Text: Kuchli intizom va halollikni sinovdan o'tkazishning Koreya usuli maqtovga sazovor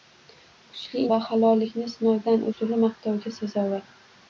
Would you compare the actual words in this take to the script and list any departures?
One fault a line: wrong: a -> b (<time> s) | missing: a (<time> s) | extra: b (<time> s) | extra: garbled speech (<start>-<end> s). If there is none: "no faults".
missing: intizom (1.0 s)
missing: o'tkazishning Koreya (2.5 s)